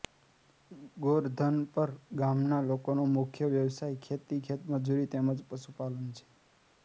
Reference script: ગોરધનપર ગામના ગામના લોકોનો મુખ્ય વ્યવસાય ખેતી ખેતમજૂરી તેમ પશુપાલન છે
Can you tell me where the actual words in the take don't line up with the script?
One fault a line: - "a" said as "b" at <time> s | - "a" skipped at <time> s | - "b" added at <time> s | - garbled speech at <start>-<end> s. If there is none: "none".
- "ગામના" skipped at 2.6 s
- "જ" added at 5.3 s